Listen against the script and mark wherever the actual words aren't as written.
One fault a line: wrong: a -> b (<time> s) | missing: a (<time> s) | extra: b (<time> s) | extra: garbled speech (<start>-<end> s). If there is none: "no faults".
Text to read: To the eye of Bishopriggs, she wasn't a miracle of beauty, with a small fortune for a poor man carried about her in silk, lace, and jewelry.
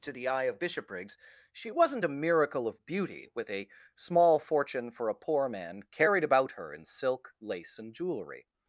no faults